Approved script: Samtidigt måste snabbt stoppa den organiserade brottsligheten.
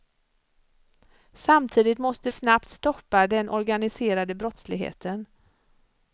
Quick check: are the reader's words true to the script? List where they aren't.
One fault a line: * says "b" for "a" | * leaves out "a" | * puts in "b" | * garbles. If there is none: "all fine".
all fine